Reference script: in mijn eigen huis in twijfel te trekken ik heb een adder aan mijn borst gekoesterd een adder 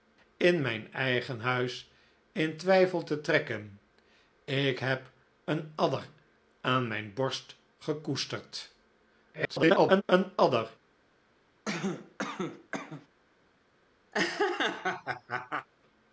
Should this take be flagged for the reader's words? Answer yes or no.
yes